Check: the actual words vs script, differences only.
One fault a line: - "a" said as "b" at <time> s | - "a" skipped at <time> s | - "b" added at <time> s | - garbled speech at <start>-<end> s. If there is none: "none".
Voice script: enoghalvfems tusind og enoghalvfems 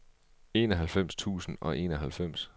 none